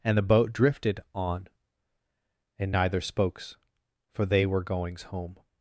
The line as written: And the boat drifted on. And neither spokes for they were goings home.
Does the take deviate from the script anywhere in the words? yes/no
no